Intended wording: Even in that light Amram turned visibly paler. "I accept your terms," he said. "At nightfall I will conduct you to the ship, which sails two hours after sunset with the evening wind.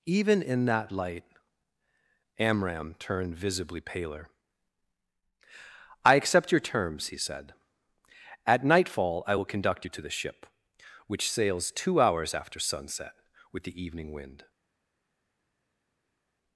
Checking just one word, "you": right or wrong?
right